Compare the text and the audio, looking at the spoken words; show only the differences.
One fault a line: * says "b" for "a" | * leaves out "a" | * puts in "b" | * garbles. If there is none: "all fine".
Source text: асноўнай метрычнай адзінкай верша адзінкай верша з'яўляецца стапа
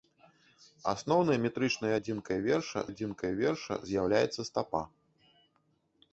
all fine